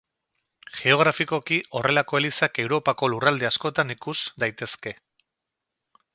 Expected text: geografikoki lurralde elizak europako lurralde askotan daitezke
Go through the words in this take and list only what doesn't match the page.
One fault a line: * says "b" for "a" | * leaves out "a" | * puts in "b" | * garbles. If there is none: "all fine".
* says "horrelako" for "lurralde"
* puts in "ikus"